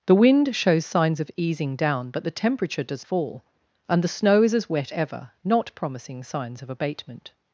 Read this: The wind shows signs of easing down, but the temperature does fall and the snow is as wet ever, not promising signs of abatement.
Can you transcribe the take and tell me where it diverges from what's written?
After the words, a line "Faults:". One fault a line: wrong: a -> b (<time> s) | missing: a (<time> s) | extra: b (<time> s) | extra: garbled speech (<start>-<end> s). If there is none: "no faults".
The wind shows signs of easing down, but the temperature does fall and the snow is as wet ever, not promising signs of abatement.
Faults:
no faults